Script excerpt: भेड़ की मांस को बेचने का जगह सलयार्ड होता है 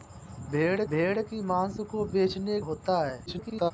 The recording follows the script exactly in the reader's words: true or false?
false